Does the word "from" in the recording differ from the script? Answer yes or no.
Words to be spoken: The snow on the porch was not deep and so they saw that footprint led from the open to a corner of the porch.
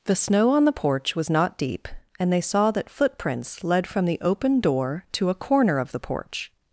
no